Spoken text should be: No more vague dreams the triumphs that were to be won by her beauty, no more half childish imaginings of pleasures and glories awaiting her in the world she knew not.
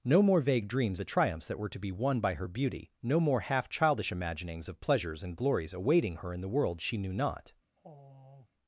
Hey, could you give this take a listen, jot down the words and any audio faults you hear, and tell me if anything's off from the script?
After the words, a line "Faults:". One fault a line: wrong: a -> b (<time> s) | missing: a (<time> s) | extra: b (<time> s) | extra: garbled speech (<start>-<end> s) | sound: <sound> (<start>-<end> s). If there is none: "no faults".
No more vague dreams the triumphs that were to be won by her beauty, no more half childish imaginings of pleasures and glories awaiting her in the world she knew not.
Faults:
sound: sigh (7.8-8.5 s)